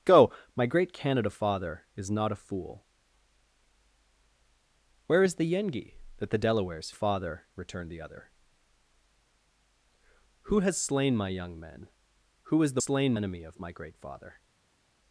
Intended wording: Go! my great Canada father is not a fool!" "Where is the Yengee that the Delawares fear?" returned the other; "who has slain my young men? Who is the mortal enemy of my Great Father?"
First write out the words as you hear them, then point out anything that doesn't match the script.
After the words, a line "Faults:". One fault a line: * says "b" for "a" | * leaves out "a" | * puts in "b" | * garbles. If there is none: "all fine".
Go! my great Canada father is not a fool!" "Where is the Yengee that the Delawares father?" returned the other; "who has slain my young men? Who is the slain enemy of my Great Father?"
Faults:
* says "father" for "fear"
* says "slain" for "mortal"